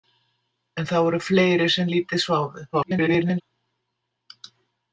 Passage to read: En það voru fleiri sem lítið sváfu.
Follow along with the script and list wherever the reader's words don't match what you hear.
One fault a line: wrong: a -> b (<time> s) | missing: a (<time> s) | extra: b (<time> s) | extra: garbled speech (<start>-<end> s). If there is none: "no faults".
extra: garbled speech (2.7-3.4 s)